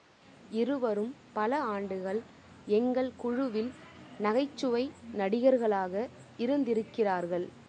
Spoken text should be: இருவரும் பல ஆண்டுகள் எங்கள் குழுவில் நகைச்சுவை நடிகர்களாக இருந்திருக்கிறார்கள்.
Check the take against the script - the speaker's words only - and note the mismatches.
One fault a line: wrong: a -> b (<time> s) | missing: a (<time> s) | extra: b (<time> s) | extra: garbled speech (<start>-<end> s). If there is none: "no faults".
no faults